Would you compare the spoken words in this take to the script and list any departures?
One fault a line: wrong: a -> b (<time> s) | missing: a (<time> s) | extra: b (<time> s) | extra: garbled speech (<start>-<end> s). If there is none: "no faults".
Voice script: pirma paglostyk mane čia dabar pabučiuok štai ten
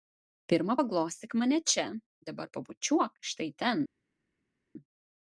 no faults